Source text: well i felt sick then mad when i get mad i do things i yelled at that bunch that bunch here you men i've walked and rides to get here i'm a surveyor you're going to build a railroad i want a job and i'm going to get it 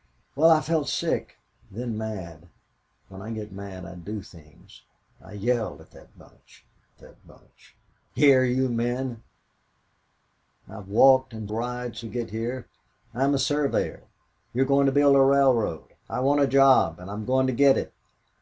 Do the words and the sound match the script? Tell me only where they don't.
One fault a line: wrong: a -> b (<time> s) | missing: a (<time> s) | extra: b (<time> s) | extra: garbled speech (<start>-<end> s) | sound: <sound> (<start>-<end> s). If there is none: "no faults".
no faults